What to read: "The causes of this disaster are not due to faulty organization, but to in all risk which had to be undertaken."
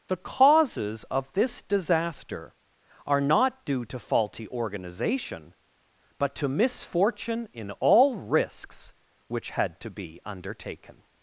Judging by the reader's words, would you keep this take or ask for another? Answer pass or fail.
fail